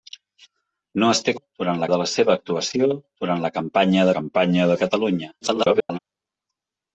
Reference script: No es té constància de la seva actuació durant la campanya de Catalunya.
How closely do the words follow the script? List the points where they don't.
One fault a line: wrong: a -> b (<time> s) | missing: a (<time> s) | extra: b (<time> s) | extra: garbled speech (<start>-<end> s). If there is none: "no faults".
wrong: constància -> durant (1.4 s)
extra: campanya (4.2 s)
extra: garbled speech (5.4-6.0 s)